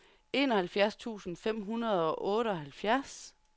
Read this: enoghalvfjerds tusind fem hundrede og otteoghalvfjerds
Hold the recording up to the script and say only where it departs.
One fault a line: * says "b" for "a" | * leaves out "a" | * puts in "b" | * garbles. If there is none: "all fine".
all fine